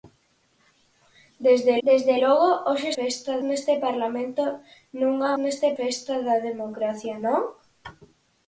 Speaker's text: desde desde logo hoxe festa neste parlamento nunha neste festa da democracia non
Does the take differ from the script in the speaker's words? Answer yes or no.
no